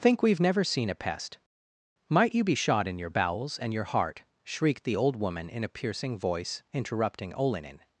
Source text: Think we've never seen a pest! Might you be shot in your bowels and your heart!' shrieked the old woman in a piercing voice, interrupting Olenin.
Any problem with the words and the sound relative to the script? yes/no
no